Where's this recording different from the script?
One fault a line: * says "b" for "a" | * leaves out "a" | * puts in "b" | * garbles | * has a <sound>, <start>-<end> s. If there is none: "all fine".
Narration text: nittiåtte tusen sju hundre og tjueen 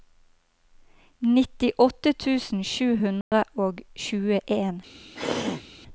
* has a dropout, 3.2-3.3 s
* has a throat clearing, 5.2-5.7 s